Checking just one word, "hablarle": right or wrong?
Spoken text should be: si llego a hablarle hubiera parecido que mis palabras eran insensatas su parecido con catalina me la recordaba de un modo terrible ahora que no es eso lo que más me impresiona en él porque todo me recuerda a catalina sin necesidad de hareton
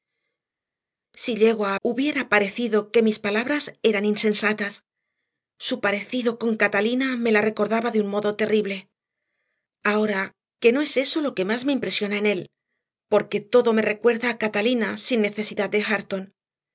wrong